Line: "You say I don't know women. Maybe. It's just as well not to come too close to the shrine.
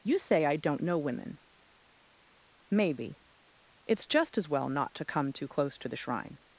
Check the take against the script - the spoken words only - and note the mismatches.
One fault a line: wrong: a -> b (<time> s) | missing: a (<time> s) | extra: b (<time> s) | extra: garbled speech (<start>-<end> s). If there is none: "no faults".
no faults